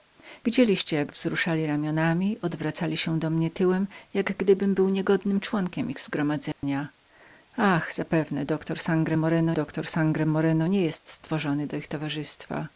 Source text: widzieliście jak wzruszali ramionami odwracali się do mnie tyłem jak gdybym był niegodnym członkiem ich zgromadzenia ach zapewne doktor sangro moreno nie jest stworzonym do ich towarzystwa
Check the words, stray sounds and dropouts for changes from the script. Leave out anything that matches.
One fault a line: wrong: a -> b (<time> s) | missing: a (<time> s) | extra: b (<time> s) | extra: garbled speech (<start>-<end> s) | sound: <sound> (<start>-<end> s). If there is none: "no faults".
sound: dropout (6.5-6.6 s)
extra: doktor sangro moreno (9.5 s)